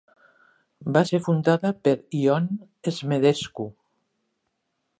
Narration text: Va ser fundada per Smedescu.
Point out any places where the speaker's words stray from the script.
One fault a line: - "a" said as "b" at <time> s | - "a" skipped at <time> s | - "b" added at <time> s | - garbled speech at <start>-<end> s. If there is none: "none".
- "Ion" added at 2.2 s